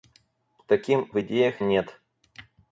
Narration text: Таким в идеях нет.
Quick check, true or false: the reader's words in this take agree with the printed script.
true